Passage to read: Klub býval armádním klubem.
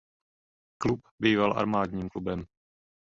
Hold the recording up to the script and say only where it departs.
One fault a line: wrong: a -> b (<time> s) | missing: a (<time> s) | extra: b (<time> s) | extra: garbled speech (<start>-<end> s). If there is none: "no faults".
no faults